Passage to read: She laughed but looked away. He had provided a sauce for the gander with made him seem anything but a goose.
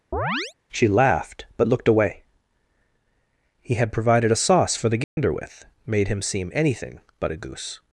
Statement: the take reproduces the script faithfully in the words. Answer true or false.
true